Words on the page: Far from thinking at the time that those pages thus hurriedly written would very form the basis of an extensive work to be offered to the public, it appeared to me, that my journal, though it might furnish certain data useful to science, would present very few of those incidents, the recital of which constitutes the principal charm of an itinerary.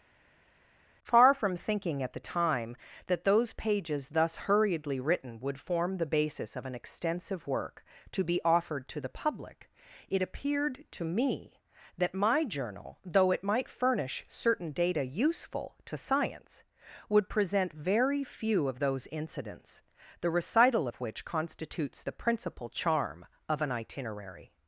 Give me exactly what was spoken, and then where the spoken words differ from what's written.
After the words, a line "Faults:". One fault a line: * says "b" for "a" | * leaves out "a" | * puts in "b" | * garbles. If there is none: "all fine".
Far from thinking at the time that those pages thus hurriedly written would form the basis of an extensive work to be offered to the public, it appeared to me, that my journal, though it might furnish certain data useful to science, would present very few of those incidents, the recital of which constitutes the principal charm of an itinerary.
Faults:
* leaves out "very"